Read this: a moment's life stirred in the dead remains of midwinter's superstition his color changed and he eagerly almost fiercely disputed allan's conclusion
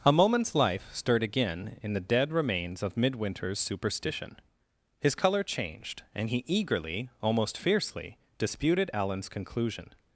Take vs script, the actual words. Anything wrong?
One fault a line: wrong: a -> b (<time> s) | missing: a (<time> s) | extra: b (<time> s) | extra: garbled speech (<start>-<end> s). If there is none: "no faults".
extra: again (1.2 s)